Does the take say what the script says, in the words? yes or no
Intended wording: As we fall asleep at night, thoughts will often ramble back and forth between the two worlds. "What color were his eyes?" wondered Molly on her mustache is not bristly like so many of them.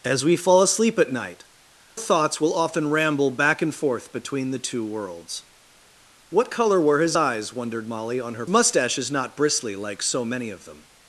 yes